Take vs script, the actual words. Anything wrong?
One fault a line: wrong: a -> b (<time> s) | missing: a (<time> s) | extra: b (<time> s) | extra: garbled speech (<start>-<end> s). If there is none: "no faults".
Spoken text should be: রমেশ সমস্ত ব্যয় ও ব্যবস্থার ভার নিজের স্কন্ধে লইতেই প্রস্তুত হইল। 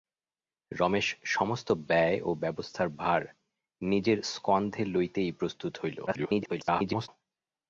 extra: garbled speech (6.1-7.1 s)